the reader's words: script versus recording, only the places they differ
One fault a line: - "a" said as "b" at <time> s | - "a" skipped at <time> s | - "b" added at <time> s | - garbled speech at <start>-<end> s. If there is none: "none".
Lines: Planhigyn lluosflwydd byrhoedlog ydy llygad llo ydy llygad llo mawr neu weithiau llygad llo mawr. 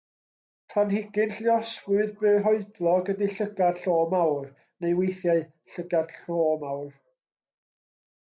- "ydy llygad llo" skipped at 4.0 s